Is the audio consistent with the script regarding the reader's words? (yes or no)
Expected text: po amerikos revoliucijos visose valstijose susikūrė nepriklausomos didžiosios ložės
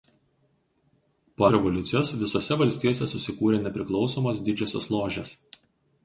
no